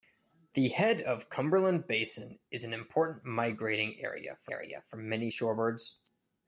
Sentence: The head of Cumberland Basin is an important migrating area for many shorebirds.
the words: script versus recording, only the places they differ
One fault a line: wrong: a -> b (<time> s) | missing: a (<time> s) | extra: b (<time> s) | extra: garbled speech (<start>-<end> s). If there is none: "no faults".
extra: area for (4.5 s)